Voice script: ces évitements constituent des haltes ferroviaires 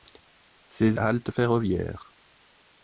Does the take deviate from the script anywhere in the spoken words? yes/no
yes